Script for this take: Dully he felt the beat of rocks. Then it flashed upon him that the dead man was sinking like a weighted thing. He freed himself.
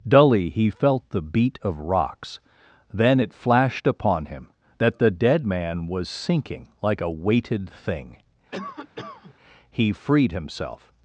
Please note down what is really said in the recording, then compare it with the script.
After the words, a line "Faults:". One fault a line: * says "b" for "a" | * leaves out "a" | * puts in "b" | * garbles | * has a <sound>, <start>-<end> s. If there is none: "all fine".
Dully he felt the beat of rocks. Then it flashed upon him that the dead man was sinking like a weighted thing. He freed himself.
Faults:
* has a cough, 8.5-9.3 s